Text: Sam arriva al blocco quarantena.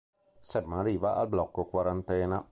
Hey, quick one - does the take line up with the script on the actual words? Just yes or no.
yes